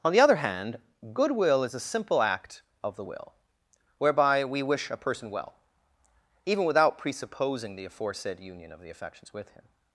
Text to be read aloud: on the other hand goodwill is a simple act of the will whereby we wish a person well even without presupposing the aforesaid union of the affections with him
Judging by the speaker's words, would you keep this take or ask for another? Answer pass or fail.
pass